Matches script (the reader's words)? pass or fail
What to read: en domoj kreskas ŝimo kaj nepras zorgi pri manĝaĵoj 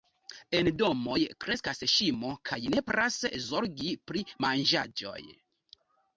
pass